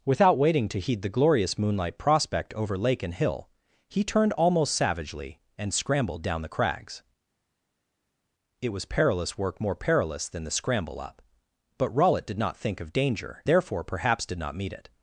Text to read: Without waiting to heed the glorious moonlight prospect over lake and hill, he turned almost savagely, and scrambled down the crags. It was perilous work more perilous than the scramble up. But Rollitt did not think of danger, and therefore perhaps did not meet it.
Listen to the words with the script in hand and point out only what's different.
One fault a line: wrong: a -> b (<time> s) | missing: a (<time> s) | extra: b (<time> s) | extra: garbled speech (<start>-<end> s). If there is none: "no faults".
missing: and (13.5 s)